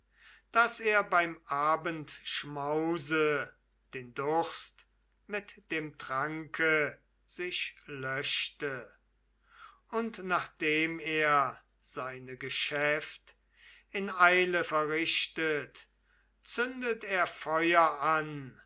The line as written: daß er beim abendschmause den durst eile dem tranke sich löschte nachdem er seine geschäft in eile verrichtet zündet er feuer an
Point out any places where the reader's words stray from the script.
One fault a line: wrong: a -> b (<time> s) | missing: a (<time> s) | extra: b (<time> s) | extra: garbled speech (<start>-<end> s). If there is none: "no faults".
wrong: eile -> mit (5.3 s)
extra: und (9.9 s)